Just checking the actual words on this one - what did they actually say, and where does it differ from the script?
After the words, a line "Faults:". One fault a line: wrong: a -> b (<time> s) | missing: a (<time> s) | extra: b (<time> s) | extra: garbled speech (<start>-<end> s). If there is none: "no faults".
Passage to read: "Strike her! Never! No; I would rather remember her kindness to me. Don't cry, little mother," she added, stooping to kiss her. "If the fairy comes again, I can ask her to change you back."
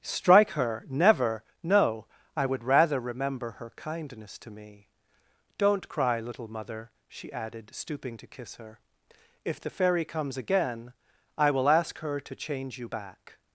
"Strike her! Never! No; I would rather remember her kindness to me. Don't cry, little mother," she added, stooping to kiss her. "If the fairy comes again, I will ask her to change you back."
Faults:
wrong: can -> will (11.5 s)